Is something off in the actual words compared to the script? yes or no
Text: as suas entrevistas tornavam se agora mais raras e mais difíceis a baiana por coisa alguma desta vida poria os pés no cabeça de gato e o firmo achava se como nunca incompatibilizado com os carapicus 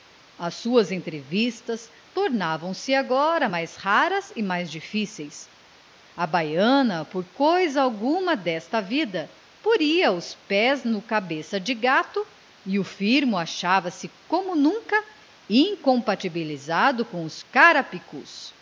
no